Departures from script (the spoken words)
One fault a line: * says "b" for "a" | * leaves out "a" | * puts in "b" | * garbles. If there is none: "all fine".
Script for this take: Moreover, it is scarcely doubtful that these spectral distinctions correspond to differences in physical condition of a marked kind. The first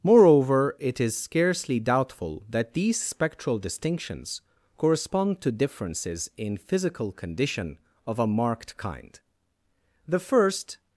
all fine